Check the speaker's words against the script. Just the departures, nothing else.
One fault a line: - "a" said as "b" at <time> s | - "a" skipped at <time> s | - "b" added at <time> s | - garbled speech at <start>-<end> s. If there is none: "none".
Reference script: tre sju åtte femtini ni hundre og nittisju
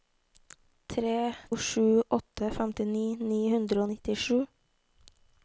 none